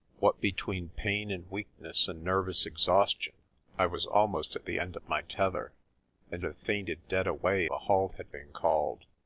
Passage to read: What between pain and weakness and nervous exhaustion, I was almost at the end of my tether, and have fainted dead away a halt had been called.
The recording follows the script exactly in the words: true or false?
true